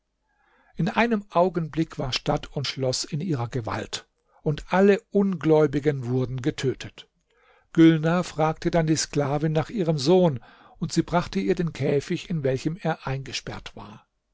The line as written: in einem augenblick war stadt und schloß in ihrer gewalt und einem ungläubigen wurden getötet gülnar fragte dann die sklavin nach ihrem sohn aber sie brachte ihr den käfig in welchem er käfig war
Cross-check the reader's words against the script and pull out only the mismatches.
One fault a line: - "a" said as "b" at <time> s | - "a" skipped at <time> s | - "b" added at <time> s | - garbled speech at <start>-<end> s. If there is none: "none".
- "einem" said as "alle" at 4.7 s
- "aber" said as "und" at 10.8 s
- "käfig" said as "eingesperrt" at 13.1 s